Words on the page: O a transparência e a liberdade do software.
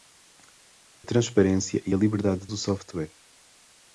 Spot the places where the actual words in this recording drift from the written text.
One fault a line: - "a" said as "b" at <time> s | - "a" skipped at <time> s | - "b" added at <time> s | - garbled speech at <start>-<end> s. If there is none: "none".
none